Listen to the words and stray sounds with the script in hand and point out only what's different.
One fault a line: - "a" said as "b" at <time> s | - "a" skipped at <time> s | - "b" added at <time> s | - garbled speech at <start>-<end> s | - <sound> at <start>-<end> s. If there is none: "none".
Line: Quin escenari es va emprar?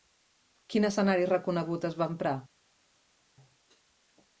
- "reconegut" added at 1.3 s